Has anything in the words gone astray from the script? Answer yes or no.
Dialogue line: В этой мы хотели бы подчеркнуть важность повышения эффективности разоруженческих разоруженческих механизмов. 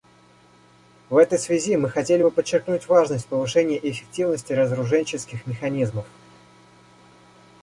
yes